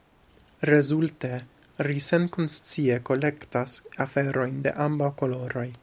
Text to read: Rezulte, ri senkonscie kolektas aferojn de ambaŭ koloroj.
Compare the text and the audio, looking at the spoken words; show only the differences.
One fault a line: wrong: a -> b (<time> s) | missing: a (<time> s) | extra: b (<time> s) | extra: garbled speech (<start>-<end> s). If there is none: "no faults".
no faults